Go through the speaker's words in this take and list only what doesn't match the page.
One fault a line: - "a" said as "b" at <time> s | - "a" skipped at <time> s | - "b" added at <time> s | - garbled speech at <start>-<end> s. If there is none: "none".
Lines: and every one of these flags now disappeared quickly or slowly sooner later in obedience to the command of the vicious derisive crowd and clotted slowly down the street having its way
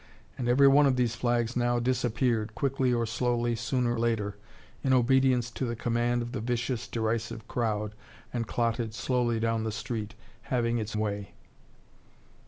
none